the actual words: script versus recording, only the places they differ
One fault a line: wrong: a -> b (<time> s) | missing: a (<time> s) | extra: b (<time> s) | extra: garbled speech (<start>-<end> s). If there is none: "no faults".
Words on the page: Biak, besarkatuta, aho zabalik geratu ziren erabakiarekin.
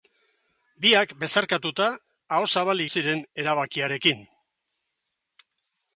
missing: geratu (2.9 s)